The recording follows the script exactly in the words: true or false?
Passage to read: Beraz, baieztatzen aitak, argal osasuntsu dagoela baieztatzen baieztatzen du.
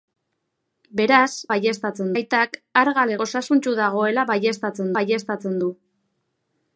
true